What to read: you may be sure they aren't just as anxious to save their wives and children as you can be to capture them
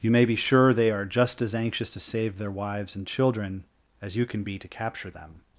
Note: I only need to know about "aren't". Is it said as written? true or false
false